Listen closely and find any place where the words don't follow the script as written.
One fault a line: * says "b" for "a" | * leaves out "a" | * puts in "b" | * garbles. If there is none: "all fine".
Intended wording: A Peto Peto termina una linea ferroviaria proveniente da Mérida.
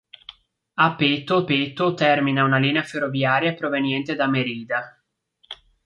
all fine